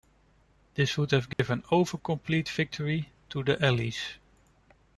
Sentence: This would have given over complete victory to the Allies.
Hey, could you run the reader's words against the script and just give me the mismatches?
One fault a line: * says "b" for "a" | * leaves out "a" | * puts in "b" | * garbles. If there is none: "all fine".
all fine